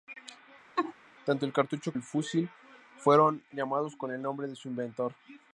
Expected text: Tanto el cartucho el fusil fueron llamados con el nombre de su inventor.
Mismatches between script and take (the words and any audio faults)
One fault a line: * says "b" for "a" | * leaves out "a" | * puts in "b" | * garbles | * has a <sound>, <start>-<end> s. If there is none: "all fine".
* has a laugh, 0.8-0.9 s